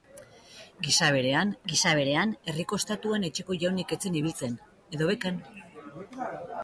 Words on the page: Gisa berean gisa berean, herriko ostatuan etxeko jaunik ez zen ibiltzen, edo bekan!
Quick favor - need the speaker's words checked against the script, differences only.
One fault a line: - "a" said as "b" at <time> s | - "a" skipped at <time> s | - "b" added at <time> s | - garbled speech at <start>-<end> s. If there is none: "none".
none